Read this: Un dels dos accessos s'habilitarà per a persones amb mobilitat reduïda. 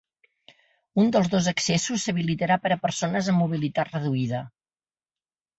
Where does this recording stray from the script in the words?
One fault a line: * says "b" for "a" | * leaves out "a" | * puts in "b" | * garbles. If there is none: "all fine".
all fine